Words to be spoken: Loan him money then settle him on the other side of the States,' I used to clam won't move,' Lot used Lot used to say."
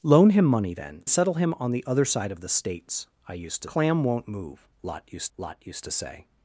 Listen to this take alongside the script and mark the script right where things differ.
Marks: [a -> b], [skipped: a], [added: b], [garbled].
Loan him money then settle him on the other side of the States,' I used to clam won't move,' Lot used Lot used to say."